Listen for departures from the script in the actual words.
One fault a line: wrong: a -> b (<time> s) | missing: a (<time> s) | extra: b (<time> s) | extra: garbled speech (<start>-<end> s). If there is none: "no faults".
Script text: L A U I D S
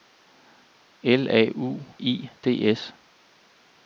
no faults